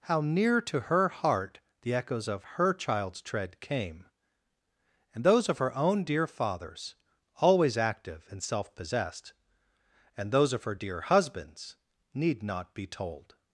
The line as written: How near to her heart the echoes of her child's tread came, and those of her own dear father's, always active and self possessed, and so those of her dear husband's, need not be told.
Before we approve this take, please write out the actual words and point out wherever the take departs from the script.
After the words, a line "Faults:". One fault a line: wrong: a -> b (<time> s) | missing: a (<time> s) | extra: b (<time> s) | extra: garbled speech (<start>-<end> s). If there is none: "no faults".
How near to her heart the echoes of her child's tread came, and those of her own dear father's, always active and self possessed, and those of her dear husband's, need not be told.
Faults:
missing: so (10.3 s)